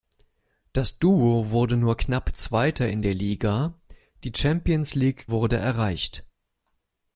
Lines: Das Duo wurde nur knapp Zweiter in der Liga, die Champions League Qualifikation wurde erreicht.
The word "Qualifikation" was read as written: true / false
false